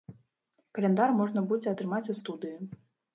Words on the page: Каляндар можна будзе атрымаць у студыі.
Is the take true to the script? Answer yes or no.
yes